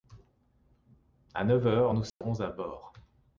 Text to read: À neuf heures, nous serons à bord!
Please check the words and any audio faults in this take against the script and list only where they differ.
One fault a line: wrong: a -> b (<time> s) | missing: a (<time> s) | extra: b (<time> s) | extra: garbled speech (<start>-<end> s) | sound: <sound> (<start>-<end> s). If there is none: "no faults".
sound: dropout (2.1-2.2 s)